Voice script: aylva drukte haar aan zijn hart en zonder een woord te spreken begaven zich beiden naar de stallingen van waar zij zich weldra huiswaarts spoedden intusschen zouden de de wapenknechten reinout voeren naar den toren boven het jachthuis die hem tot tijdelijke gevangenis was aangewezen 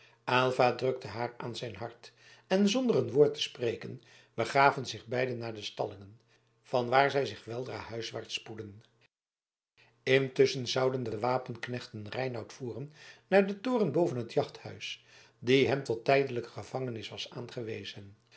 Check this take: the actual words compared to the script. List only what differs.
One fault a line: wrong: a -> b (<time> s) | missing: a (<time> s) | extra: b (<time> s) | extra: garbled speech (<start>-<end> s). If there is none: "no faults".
no faults